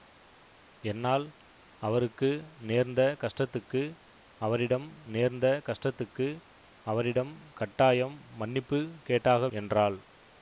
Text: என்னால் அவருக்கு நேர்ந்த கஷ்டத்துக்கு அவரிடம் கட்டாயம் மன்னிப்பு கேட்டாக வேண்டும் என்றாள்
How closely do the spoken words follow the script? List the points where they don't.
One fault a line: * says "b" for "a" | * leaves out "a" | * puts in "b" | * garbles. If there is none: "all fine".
* puts in "நேர்ந்த கஷ்டத்துக்கு அவரிடம்"
* leaves out "வேண்டும்"